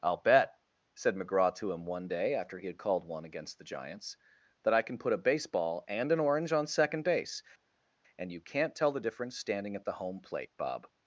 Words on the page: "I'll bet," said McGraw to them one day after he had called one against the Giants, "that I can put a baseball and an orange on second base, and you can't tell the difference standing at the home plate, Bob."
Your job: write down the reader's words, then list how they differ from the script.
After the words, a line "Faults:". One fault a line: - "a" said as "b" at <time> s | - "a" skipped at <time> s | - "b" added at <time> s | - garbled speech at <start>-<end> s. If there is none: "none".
"I'll bet," said McGraw to him one day after he had called one against the Giants, "that I can put a baseball and an orange on second base, and you can't tell the difference standing at the home plate, Bob."
Faults:
- "them" said as "him" at 1.7 s